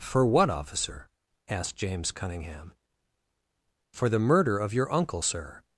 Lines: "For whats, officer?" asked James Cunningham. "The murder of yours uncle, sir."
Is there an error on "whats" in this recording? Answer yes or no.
yes